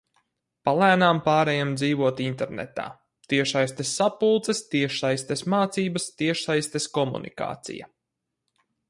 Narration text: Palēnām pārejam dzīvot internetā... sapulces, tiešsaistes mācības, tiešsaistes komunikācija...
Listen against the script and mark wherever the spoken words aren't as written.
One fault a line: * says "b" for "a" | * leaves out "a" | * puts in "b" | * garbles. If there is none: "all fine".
* puts in "tiešsaistes"